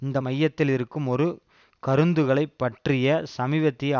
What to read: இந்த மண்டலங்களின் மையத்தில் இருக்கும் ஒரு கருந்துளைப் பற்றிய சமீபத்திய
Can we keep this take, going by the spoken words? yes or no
no